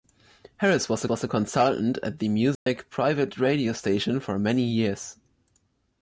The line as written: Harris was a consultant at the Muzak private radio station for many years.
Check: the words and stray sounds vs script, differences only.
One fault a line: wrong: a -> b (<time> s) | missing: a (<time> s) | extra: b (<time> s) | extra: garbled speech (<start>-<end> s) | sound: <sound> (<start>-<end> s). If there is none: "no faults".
extra: was (1.1 s)
sound: dropout (2.6-2.7 s)